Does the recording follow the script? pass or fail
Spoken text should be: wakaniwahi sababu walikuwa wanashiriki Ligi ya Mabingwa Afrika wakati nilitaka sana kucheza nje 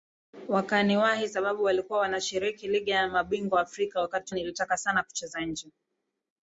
pass